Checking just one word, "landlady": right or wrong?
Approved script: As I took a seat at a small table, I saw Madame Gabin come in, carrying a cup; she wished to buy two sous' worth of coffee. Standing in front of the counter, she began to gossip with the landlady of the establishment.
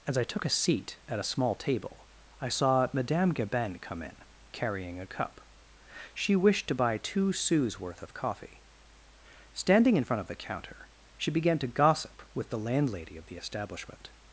right